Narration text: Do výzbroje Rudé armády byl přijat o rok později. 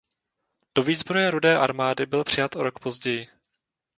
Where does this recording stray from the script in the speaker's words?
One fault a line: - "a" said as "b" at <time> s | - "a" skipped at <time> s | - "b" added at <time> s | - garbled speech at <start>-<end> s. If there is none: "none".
none